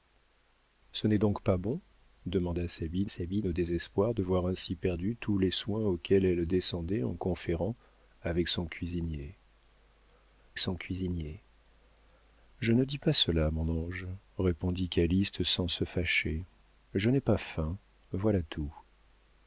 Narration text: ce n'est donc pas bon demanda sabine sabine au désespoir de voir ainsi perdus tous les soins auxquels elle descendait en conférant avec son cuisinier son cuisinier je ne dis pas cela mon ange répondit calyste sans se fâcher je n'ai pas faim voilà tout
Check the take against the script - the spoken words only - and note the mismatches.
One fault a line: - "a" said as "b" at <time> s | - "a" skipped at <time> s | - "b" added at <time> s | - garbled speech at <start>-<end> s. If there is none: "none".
none